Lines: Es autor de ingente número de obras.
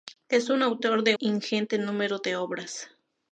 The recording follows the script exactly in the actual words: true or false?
true